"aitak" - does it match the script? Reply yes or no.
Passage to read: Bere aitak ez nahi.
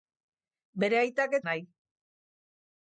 yes